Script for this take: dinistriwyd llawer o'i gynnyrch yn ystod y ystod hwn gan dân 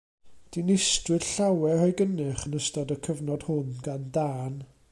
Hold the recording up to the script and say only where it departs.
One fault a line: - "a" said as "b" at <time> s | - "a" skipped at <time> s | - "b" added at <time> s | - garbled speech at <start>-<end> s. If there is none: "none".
- "ystod" said as "cyfnod" at 3.1 s